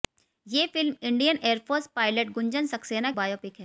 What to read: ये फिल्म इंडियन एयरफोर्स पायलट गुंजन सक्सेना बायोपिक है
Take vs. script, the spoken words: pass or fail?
pass